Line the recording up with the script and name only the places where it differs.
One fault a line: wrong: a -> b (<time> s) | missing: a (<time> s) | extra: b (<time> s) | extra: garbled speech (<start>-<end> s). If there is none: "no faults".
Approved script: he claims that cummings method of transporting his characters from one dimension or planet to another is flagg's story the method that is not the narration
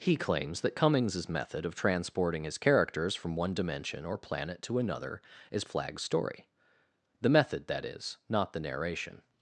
no faults